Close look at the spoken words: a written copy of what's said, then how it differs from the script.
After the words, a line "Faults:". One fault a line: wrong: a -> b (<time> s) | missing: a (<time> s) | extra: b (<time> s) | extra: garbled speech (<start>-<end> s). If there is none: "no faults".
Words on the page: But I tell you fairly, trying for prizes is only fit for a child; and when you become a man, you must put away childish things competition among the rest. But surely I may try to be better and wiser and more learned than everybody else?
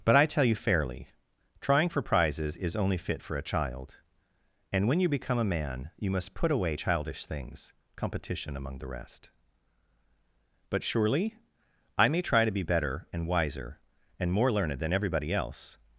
But I tell you fairly, trying for prizes is only fit for a child; and when you become a man, you must put away childish things competition among the rest. But surely I may try to be better and wiser and more learned than everybody else?
Faults:
no faults